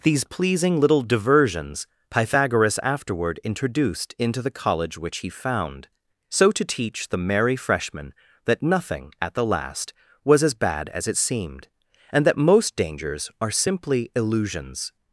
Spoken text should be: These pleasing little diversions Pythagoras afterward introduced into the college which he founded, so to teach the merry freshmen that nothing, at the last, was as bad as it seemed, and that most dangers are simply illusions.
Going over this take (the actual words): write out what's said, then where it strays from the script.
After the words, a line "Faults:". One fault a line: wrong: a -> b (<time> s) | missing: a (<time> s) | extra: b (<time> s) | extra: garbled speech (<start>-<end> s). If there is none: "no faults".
These pleasing little diversions Pythagoras afterward introduced into the college which he found, so to teach the merry freshmen that nothing, at the last, was as bad as it seemed, and that most dangers are simply illusions.
Faults:
wrong: founded -> found (5.3 s)